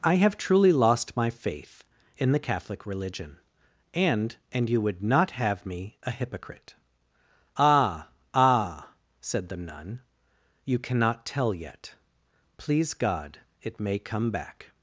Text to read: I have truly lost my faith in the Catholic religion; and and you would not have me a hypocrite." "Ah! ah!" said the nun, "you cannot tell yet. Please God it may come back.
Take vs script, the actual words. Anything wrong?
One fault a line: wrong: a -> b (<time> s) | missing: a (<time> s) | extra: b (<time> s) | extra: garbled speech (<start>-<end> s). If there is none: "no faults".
no faults